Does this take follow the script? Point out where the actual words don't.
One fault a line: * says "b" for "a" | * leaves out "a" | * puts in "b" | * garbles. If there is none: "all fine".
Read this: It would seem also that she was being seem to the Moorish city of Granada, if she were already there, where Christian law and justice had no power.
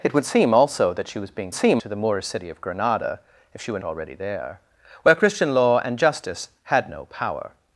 all fine